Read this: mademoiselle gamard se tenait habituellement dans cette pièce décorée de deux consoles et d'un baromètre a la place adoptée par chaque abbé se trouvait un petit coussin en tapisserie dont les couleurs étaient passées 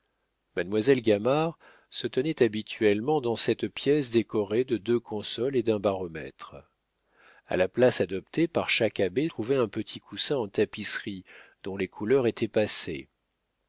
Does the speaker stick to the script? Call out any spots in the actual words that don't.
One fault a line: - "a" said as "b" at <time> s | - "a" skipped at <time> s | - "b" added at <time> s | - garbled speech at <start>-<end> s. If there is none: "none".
- "se" skipped at 9.3 s